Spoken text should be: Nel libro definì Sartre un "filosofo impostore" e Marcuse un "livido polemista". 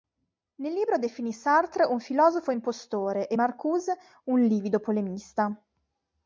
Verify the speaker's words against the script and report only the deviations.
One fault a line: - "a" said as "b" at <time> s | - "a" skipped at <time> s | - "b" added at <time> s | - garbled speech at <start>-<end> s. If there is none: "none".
none